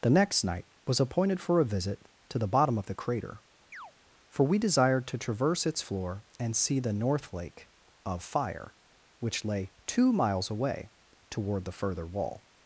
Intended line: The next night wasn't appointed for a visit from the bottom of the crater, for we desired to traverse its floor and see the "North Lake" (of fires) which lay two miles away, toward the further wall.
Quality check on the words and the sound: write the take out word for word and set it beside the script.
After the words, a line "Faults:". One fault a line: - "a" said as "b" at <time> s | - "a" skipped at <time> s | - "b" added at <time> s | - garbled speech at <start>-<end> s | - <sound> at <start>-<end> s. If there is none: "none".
The next night was appointed for a visit to the bottom of the crater, for we desired to traverse its floor and see the "North Lake" (of fire) which lay two miles away, toward the further wall.
Faults:
- "wasn't" said as "was" at 0.9 s
- "from" said as "to" at 2.3 s
- chirp at 3.7-3.9 s
- "fires" said as "fire" at 8.2 s